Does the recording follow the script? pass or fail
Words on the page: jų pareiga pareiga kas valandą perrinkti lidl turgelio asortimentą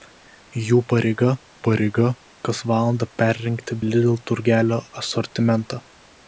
pass